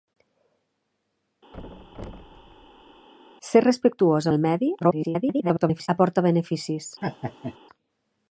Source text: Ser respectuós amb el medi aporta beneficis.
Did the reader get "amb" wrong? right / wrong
wrong